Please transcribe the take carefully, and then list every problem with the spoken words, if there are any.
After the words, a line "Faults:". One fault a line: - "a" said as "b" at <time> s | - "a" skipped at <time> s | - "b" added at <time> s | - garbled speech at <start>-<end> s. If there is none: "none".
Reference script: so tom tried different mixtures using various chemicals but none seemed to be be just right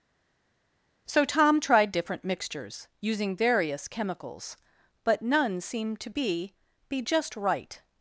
so tom tried different mixtures using various chemicals but none seemed to be be just right
Faults:
none